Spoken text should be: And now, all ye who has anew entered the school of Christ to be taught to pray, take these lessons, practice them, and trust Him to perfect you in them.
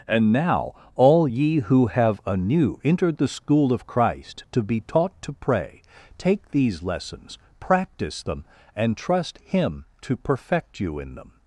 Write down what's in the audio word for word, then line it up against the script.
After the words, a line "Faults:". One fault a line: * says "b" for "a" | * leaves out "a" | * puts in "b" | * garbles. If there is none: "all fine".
And now, all ye who have anew entered the school of Christ to be taught to pray, take these lessons, practice them, and trust Him to perfect you in them.
Faults:
* says "have" for "has"